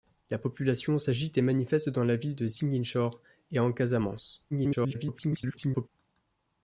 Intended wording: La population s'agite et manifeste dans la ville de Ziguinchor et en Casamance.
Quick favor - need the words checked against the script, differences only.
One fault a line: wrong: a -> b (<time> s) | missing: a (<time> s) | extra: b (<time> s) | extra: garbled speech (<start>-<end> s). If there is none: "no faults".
extra: garbled speech (4.5-5.9 s)